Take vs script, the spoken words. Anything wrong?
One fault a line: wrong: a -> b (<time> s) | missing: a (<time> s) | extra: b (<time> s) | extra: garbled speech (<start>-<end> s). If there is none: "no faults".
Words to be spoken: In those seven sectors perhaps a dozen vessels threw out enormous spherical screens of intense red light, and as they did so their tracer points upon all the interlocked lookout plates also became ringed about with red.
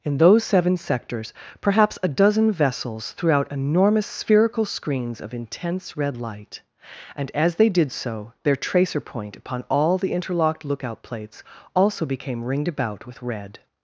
wrong: points -> point (9.0 s)